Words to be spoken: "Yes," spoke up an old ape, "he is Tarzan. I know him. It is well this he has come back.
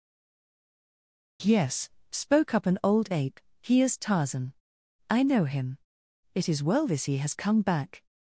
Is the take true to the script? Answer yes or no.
yes